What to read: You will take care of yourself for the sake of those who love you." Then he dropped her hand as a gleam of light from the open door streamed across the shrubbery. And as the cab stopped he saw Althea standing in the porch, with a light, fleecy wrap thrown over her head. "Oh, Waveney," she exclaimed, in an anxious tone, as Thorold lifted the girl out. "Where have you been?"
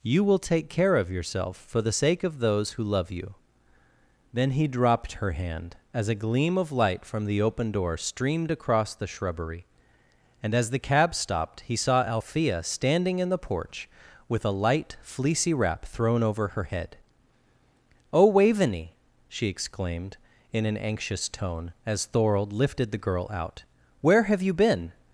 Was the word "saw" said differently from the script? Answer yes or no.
no